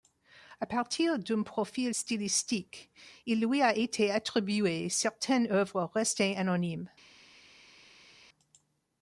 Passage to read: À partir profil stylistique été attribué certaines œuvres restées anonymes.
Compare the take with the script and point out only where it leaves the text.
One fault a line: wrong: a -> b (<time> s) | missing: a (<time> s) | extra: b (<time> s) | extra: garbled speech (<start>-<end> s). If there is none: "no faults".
extra: d'un (1.2 s)
extra: il lui a (3.2 s)